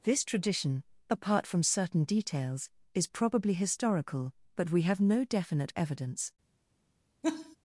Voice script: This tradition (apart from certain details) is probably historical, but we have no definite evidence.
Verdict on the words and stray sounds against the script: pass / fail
fail